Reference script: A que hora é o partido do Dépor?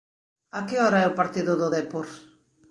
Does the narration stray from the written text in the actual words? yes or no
no